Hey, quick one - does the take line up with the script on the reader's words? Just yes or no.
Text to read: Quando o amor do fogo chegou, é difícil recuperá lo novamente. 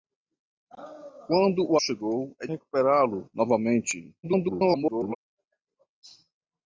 no